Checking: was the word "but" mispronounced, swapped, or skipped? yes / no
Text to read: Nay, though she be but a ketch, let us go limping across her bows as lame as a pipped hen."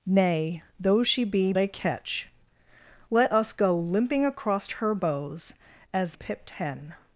yes